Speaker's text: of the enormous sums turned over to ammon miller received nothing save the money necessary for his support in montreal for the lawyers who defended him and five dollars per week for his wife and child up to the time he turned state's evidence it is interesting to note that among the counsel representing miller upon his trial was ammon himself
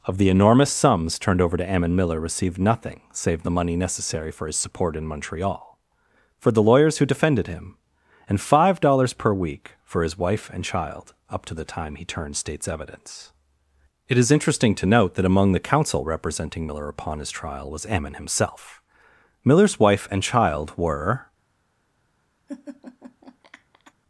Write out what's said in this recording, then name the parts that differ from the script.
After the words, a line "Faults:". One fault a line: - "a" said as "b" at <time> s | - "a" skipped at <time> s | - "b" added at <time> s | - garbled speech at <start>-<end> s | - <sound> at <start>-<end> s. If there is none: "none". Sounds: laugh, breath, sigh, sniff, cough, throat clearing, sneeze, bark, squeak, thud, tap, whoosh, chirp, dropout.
of the enormous sums turned over to ammon miller received nothing save the money necessary for his support in montreal for the lawyers who defended him and five dollars per week for his wife and child up to the time he turned state's evidence it is interesting to note that among the counsel representing miller upon his trial was ammon himself miller's wife and child were
Faults:
- "miller's wife and child were" added at 19.4 s
- laugh at 22.5-23.9 s